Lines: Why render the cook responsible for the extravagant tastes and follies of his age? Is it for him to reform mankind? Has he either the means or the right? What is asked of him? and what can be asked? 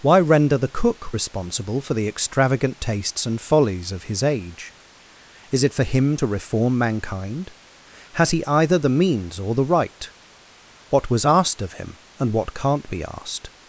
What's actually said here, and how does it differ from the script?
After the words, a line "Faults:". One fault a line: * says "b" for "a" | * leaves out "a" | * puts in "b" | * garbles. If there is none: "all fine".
Why render the cook responsible for the extravagant tastes and follies of his age? Is it for him to reform mankind? Has he either the means or the right? What was asked of him? and what can't be asked?
Faults:
* says "was" for "is"
* says "can't" for "can"